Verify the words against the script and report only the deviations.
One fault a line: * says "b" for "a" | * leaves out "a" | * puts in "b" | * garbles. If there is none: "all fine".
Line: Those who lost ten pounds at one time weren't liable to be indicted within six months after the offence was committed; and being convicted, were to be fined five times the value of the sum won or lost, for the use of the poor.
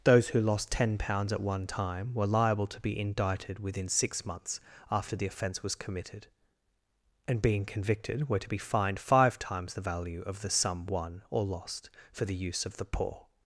* says "were" for "weren't"